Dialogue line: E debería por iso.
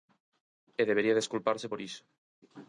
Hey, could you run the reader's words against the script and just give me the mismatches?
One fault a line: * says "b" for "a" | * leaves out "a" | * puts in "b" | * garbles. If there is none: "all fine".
* puts in "desculparse"